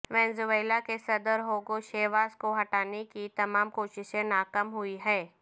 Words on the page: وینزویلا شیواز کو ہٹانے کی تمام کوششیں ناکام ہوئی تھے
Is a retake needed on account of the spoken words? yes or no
yes